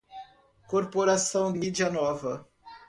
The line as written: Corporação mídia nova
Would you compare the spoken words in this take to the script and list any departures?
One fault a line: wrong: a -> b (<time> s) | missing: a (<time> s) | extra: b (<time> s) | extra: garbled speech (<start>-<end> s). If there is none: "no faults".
no faults